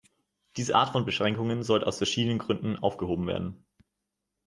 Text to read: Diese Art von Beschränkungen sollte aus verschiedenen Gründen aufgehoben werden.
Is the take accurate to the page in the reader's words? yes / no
yes